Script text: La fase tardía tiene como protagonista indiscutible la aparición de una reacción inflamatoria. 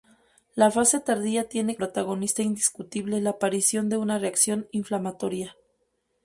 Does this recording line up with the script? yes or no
no